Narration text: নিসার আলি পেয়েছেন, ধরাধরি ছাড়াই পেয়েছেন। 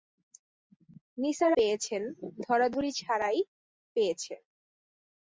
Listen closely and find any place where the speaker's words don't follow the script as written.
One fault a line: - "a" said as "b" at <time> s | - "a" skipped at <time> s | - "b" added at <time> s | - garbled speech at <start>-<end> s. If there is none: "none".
- "আলি" skipped at 1.5 s